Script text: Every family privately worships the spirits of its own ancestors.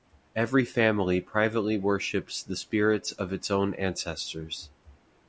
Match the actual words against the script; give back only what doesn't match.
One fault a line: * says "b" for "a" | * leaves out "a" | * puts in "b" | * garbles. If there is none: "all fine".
all fine